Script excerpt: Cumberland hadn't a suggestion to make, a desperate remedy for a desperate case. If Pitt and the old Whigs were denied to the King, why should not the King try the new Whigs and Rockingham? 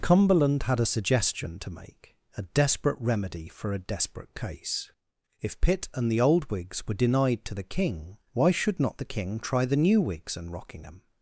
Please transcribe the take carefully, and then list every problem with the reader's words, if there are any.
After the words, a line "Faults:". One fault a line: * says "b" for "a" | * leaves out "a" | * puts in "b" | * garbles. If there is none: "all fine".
Cumberland had a suggestion to make, a desperate remedy for a desperate case. If Pitt and the old Whigs were denied to the King, why should not the King try the new Whigs and Rockingham?
Faults:
* says "had" for "hadn't"